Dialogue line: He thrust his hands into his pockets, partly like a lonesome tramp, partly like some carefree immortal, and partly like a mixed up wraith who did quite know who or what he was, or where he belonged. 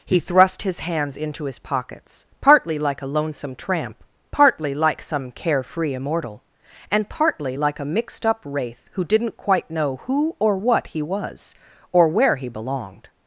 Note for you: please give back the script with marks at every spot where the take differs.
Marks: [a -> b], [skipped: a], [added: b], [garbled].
He thrust his hands into his pockets, partly like a lonesome tramp, partly like some carefree immortal, and partly like a mixed up wraith who [did -> didn't] quite know who or what he was, or where he belonged.